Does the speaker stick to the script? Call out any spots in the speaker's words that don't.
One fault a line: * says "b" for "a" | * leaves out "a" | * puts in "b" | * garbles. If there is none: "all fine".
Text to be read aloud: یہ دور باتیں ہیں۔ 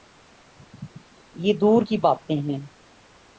* puts in "کی"